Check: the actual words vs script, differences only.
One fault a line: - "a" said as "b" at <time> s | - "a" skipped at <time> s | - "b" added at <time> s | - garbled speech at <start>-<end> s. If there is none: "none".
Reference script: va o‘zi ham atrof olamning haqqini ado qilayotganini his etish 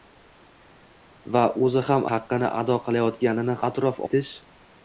- "atrof olamning" skipped at 2.1 s
- "his" said as "atrof" at 3.7 s